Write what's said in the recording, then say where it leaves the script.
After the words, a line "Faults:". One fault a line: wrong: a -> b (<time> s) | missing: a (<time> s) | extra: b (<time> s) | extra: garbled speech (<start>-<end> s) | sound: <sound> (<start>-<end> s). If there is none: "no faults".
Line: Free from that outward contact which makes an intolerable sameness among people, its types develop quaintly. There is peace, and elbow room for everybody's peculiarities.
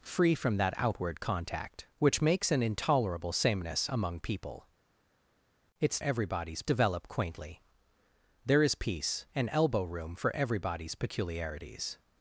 Free from that outward contact which makes an intolerable sameness among people, its everybody's develop quaintly. There is peace, and elbow room for everybody's peculiarities.
Faults:
wrong: types -> everybody's (6.0 s)